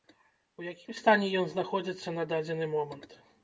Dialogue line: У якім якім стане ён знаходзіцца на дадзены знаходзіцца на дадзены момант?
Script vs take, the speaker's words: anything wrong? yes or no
yes